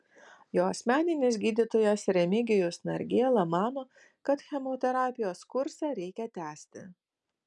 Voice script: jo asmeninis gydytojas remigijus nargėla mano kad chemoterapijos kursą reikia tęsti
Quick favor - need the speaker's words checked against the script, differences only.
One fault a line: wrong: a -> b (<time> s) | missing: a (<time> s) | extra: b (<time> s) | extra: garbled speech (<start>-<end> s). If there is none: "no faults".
no faults